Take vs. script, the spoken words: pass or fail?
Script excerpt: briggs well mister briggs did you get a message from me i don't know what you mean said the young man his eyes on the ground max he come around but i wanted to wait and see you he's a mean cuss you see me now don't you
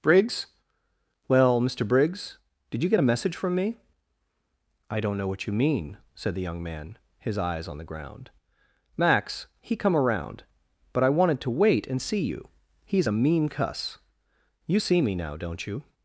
pass